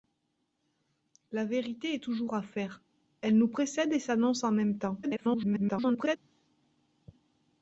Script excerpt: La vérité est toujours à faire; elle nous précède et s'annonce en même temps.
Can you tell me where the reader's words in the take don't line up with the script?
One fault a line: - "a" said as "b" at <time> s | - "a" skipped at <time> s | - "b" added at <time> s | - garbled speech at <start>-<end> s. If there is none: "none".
- garbled speech at 5.0-6.2 s